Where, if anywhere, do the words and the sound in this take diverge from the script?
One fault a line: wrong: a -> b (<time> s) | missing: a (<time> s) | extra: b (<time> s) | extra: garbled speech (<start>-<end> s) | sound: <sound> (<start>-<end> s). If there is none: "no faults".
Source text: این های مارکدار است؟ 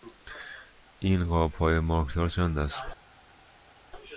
extra: قاب (1.2 s)
extra: چند (2.3 s)